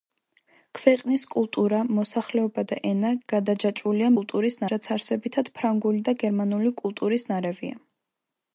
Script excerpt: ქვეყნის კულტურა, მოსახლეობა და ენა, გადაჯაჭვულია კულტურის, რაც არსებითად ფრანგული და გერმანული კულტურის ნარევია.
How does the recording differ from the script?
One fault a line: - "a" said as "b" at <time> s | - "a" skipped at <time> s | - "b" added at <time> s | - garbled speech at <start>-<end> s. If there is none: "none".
none